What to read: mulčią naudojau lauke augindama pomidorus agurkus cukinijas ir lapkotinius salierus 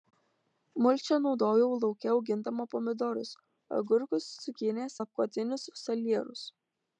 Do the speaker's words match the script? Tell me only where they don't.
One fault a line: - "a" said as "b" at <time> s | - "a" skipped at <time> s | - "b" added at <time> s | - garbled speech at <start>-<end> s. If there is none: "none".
- "ir" skipped at 5.0 s